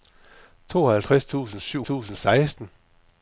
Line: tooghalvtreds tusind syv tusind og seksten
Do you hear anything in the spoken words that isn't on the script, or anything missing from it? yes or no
no